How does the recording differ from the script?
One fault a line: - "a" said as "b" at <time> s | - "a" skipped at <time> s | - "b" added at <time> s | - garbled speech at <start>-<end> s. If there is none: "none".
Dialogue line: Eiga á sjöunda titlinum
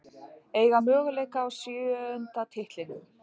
- "möguleika" added at 0.9 s